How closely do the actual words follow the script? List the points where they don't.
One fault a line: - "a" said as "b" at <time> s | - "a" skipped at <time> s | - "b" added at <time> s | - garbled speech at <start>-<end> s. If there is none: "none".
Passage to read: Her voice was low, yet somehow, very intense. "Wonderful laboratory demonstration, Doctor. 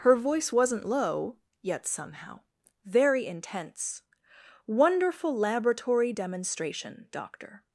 - "was" said as "wasn't" at 0.5 s